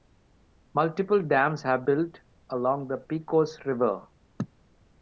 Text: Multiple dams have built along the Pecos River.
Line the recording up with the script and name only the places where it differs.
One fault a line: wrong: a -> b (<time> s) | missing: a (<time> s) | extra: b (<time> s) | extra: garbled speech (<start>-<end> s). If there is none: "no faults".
no faults